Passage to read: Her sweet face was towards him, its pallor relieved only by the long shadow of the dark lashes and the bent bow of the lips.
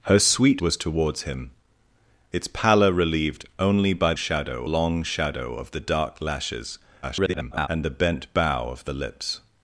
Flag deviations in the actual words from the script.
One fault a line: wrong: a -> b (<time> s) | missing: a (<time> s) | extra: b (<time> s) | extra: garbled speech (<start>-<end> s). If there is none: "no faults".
missing: face (0.6 s)
wrong: the -> shadow (4.1 s)
extra: garbled speech (7.0-7.7 s)